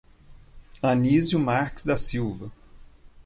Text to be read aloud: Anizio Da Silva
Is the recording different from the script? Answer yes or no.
yes